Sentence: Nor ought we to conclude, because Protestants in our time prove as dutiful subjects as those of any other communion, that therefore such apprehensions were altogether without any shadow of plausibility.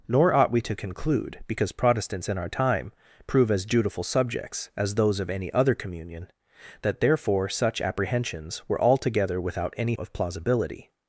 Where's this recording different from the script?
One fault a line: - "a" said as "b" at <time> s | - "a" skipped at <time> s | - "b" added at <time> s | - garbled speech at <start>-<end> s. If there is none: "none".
- "shadow" skipped at 9.9 s